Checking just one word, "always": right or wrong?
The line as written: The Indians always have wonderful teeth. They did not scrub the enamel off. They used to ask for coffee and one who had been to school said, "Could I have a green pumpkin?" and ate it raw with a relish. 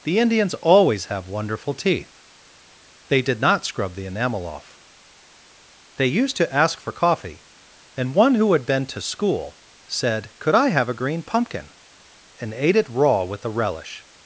right